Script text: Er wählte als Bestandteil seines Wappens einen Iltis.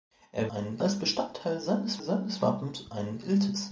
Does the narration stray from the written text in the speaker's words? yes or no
yes